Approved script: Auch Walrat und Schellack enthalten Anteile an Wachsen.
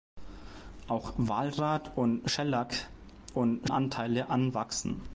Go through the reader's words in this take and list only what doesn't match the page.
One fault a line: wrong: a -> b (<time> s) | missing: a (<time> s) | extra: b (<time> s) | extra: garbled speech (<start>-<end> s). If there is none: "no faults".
wrong: enthalten -> und (3.3 s)